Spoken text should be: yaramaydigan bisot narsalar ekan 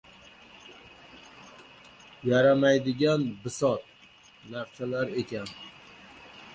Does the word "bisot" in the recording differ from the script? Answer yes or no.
no